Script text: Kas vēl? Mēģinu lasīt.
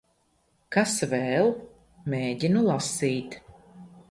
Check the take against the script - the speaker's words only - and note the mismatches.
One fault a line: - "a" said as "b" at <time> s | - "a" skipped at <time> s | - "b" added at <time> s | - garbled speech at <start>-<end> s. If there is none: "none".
none